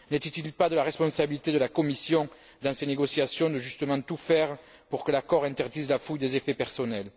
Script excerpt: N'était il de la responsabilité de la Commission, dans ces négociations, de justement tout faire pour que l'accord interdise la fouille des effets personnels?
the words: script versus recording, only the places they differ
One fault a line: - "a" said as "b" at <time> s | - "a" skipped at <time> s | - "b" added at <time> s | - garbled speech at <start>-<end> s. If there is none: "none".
- "pas" added at 0.5 s